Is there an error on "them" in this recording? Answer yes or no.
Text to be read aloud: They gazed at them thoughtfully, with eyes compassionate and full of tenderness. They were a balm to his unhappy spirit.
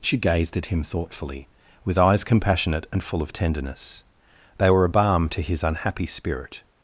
yes